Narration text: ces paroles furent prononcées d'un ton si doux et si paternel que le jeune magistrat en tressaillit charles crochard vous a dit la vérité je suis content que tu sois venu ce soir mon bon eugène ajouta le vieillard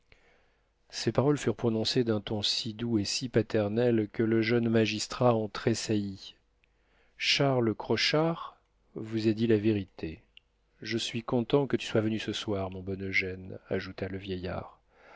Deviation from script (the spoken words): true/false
false